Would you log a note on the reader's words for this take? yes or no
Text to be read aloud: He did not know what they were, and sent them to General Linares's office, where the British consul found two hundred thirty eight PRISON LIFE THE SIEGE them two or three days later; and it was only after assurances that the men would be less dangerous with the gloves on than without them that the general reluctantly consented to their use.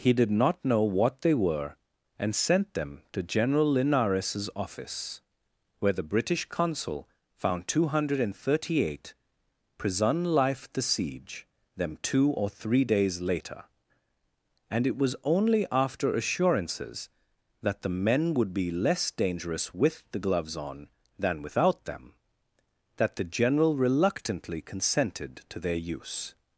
no